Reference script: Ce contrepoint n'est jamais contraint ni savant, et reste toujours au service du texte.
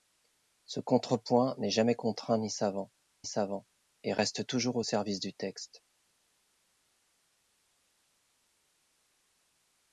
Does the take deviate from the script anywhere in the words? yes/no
yes